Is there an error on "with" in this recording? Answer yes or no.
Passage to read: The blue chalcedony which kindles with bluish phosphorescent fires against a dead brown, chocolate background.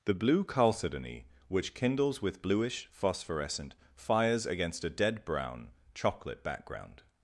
no